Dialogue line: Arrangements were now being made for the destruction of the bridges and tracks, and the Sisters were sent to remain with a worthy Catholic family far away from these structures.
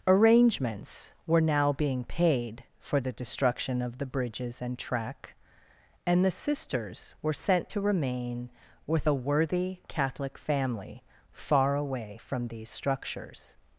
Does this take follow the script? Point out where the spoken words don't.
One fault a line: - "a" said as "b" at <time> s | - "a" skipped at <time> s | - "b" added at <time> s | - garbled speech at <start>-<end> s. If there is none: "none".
- "made" said as "paid" at 2.0 s
- "tracks" said as "track" at 4.8 s